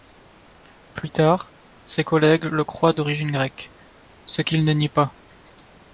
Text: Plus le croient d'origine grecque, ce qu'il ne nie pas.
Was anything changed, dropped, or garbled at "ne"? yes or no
no